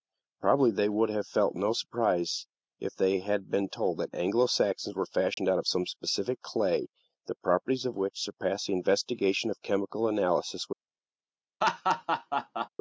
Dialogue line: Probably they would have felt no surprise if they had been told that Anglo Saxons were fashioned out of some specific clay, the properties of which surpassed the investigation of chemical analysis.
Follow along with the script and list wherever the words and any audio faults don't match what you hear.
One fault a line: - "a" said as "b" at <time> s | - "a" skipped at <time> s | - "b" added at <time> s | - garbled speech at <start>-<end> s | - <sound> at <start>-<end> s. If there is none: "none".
- dropout at 5.3-5.4 s
- laugh at 11.6-12.7 s